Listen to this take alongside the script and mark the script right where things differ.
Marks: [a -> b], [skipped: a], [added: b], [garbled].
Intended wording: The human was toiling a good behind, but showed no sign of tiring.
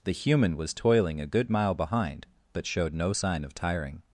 The human was toiling a good [added: mile] behind, but showed no sign of tiring.